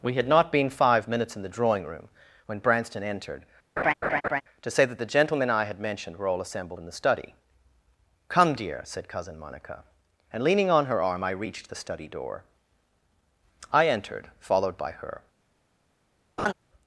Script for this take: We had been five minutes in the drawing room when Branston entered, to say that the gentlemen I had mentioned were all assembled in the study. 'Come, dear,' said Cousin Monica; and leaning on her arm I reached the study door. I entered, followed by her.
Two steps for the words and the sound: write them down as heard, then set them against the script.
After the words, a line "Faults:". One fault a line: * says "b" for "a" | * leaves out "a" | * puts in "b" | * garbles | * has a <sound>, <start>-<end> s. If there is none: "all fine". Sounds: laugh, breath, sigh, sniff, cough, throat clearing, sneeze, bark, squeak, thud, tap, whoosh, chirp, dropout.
We had not been five minutes in the drawing room when Branston entered, to say that the gentlemen I had mentioned were all assembled in the study. 'Come, dear,' said Cousin Monica; and leaning on her arm I reached the study door. I entered, followed by her.
Faults:
* puts in "not"
* has a laugh, 3.8-4.4 s
* has a laugh, 16.4-16.5 s